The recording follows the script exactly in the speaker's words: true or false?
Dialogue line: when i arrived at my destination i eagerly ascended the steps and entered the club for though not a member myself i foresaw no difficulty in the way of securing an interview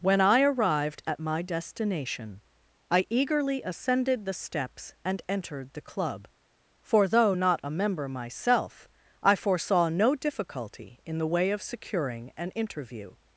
true